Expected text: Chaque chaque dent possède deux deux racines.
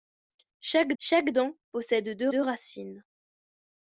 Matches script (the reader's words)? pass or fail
pass